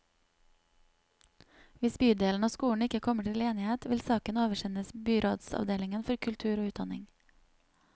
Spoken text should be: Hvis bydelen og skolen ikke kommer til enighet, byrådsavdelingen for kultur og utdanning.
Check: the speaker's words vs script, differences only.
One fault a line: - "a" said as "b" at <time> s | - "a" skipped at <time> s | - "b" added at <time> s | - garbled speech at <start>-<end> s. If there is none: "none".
- "vil saken oversendes" added at 3.9 s